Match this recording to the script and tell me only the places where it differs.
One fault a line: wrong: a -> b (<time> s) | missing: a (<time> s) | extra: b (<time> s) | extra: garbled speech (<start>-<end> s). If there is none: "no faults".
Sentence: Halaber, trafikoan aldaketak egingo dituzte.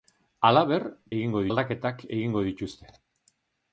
wrong: trafikoan -> egingo (1.2 s)